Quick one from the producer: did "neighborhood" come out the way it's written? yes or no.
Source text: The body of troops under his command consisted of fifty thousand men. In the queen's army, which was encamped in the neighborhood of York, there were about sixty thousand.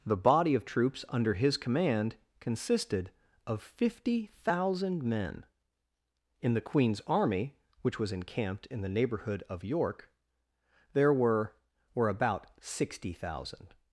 yes